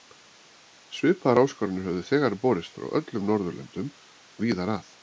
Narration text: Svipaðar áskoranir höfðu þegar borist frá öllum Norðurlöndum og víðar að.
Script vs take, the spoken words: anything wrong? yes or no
yes